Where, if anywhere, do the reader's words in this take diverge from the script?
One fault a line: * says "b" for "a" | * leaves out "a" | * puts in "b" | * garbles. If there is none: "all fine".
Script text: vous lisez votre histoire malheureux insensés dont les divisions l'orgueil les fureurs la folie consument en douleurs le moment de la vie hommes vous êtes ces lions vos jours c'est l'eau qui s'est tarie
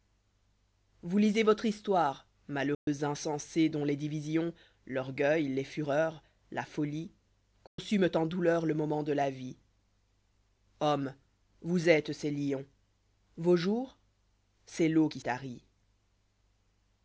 * leaves out "s'est"